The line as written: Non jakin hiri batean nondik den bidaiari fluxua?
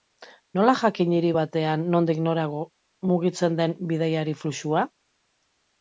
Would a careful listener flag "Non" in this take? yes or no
yes